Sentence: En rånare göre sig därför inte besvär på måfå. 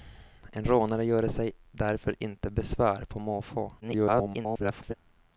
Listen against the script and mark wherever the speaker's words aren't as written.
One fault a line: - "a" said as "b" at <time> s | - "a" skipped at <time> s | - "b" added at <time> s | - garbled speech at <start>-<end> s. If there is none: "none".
- garbled speech at 3.8-4.9 s